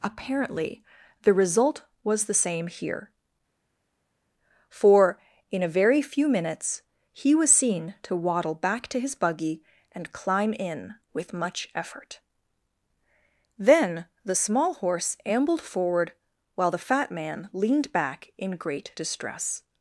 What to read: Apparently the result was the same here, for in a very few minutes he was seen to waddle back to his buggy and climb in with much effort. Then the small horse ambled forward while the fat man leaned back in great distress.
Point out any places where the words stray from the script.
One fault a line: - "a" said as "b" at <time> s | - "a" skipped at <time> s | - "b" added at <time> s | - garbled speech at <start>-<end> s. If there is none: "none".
none